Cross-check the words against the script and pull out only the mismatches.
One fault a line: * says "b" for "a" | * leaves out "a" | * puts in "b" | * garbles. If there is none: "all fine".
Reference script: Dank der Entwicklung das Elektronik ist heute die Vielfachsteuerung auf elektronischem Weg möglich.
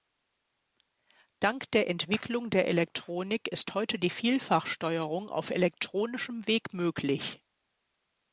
* says "der" for "das"